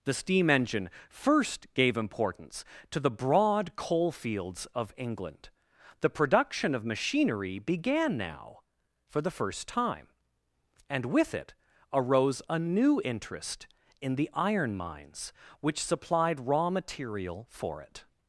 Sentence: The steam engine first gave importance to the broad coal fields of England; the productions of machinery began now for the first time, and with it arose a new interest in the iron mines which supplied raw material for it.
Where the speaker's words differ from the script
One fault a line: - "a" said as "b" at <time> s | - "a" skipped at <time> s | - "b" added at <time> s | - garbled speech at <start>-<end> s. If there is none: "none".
- "productions" said as "production" at 6.1 s